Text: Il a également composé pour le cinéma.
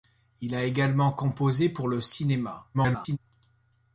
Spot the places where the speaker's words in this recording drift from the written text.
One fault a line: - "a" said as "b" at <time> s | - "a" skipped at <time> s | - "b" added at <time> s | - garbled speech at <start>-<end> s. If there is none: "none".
- garbled speech at 2.7-3.2 s